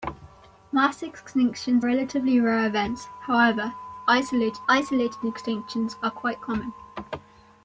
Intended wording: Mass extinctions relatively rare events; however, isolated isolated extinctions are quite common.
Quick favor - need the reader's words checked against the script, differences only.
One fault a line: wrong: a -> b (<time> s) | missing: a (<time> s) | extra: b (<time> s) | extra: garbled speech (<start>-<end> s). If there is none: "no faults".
no faults